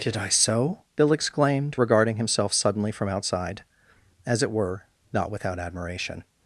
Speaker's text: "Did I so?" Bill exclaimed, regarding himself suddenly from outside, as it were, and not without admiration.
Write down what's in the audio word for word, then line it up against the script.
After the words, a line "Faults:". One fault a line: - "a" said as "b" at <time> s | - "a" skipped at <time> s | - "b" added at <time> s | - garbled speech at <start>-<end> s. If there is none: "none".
"Did I so?" Bill exclaimed, regarding himself suddenly from outside, as it were, not without admiration.
Faults:
- "and" skipped at 4.8 s